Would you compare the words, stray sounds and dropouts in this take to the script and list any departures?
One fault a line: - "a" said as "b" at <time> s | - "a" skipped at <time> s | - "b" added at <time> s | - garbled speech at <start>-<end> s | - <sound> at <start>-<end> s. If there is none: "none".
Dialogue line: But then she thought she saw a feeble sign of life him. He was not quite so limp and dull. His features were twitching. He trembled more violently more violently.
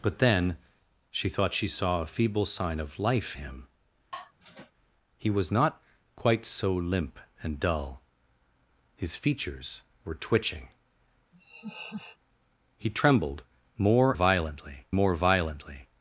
- sigh at 4.1-4.7 s
- laugh at 11.3-12.2 s